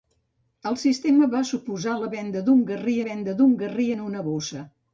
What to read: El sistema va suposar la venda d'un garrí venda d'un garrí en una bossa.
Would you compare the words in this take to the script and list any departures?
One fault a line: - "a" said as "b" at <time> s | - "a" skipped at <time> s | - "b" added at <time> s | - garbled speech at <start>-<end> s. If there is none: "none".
none